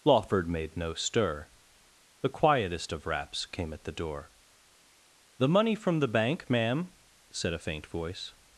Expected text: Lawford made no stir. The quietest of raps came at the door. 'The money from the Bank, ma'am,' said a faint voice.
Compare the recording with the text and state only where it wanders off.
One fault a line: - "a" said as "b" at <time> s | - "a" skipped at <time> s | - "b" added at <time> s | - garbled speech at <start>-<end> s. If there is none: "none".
none